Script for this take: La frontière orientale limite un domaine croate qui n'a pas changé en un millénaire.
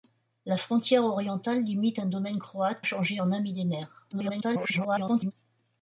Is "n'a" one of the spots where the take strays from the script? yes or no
yes